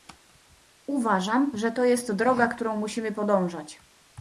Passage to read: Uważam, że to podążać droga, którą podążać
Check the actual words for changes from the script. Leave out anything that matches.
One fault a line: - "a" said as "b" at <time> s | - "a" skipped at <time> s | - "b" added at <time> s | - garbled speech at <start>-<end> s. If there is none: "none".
- "podążać" said as "jest" at 1.8 s
- "musimy" added at 2.8 s